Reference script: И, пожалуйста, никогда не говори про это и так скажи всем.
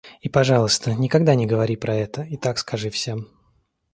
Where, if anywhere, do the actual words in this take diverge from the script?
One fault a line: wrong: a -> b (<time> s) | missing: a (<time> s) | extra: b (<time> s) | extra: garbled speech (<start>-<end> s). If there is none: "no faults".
no faults